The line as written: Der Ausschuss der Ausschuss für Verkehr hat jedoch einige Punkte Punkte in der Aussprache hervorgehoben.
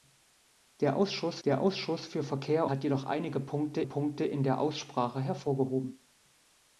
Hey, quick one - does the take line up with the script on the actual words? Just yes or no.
yes